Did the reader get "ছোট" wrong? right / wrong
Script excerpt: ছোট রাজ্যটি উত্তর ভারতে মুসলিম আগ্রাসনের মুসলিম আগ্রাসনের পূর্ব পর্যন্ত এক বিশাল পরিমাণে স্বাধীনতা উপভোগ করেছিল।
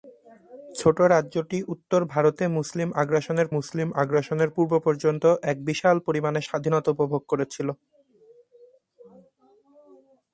right